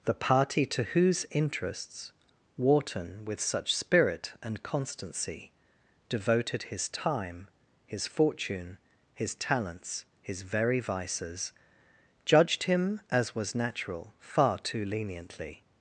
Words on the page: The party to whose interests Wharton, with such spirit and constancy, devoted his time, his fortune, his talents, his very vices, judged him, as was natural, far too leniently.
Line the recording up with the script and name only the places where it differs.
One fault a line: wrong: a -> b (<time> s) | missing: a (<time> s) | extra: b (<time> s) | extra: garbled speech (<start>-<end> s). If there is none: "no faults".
no faults